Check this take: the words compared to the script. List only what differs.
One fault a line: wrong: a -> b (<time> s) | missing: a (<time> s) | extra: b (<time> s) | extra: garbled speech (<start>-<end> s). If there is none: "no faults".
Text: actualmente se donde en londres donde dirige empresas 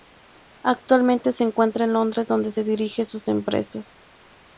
wrong: donde -> encuentra (1.4 s)
extra: sus (3.0 s)